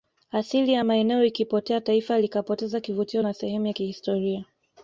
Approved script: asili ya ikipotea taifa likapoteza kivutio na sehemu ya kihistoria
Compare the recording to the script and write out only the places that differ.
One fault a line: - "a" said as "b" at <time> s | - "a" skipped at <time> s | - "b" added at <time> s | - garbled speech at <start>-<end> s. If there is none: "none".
- "maeneo" added at 0.8 s